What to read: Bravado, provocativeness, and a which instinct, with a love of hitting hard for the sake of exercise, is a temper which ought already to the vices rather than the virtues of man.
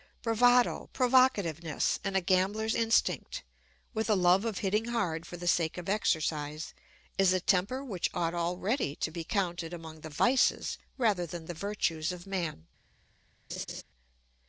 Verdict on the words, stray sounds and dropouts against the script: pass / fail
fail